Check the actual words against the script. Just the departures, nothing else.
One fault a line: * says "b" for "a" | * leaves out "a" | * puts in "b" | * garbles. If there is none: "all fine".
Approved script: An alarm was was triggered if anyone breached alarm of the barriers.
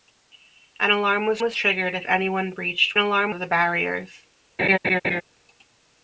all fine